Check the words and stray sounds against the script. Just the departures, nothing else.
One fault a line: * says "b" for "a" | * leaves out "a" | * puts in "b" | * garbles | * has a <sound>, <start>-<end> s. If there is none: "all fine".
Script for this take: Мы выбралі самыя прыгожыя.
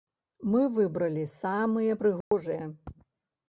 * has a dropout, 2.2-2.3 s